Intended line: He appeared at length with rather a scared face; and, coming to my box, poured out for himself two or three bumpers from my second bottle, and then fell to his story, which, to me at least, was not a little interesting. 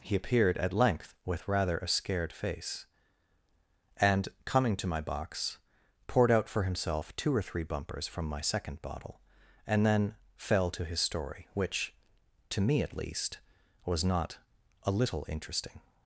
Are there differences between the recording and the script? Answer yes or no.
no